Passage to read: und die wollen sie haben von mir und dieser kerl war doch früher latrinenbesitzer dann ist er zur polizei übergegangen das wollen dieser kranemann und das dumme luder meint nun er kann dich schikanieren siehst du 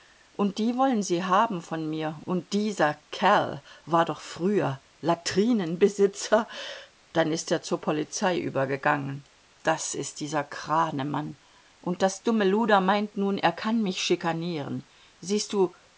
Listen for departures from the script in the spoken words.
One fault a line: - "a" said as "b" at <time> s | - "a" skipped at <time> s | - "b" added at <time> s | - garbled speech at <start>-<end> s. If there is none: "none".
- "wollen" said as "ist" at 9.9 s
- "dich" said as "mich" at 13.8 s